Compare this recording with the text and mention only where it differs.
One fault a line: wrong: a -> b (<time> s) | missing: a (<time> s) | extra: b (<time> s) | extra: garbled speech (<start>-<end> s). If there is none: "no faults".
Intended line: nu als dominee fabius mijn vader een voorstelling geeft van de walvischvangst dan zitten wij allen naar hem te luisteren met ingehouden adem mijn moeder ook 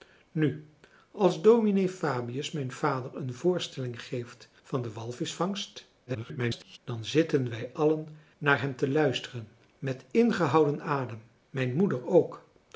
extra: garbled speech (6.1-6.8 s)